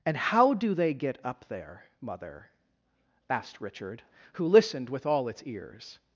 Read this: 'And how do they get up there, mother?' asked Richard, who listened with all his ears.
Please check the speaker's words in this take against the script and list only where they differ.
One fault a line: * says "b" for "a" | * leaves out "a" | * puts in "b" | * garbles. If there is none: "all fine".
* says "its" for "his"